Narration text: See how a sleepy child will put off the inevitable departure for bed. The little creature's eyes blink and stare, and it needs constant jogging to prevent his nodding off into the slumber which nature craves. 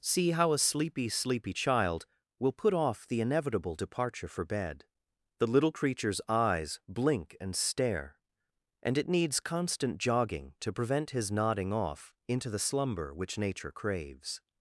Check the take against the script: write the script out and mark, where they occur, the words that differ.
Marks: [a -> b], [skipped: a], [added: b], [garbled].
See how a sleepy [added: sleepy] child will put off the inevitable departure for bed. The little creature's eyes blink and stare, and it needs constant jogging to prevent his nodding off into the slumber which nature craves.